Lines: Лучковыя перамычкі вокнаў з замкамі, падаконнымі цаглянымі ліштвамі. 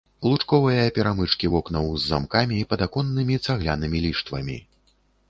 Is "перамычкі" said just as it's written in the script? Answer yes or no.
yes